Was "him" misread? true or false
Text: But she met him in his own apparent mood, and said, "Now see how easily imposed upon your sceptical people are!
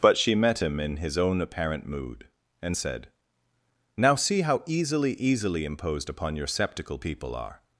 false